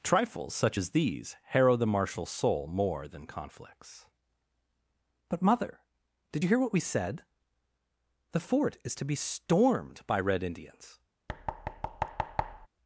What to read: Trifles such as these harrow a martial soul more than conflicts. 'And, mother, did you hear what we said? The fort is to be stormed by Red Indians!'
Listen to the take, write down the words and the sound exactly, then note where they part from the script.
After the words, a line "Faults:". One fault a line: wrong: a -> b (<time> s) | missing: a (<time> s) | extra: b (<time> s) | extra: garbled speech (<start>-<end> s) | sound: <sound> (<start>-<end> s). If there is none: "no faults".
Trifles such as these harrow the martial soul more than conflicts. 'But, mother, did you hear what we said? The fort is to be stormed by Red Indians!'
Faults:
wrong: a -> the (1.7 s)
wrong: And -> But (5.3 s)
sound: thud (11.3-12.7 s)